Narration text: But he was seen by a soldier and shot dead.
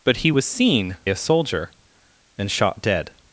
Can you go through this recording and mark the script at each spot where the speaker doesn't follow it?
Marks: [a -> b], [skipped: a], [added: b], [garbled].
But he was seen [skipped: by] a soldier and shot dead.